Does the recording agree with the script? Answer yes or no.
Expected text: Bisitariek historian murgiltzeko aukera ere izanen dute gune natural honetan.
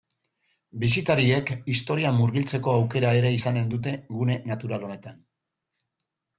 yes